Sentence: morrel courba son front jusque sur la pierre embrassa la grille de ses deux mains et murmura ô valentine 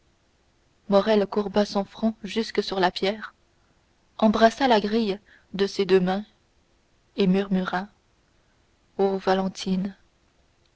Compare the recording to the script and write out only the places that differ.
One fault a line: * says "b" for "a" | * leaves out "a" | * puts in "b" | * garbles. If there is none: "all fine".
all fine